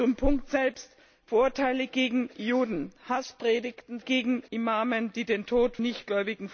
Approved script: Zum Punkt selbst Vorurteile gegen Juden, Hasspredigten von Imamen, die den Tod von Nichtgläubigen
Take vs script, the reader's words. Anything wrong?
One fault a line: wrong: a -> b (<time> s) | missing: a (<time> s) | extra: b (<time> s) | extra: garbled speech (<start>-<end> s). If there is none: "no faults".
wrong: von -> gegen (4.0 s)
missing: von (5.8 s)